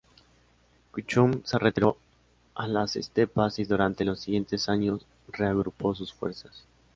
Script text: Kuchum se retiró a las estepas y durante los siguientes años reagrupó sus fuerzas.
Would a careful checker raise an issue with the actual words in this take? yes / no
no